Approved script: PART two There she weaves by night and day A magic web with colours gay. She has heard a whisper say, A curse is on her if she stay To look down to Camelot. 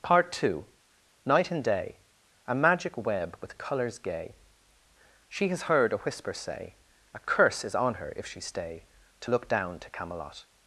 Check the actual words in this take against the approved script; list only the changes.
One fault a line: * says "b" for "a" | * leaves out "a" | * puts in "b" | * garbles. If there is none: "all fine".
* leaves out "There she weaves by"